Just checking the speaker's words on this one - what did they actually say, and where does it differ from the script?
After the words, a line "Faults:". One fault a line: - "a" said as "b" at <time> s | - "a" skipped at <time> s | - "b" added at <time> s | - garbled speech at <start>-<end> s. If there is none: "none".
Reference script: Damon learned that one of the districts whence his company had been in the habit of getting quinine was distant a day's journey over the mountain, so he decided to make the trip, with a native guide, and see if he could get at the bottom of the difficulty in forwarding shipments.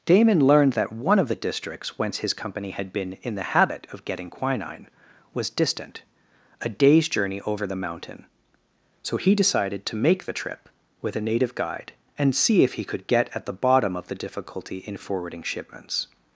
Damon learned that one of the districts whence his company had been in the habit of getting quinine was distant a day's journey over the mountain, so he decided to make the trip, with a native guide, and see if he could get at the bottom of the difficulty in forwarding shipments.
Faults:
none